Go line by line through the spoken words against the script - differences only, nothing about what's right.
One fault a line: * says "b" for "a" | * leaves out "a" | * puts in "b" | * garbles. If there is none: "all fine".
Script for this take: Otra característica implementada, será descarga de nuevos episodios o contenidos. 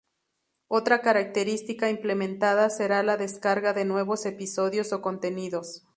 * puts in "la"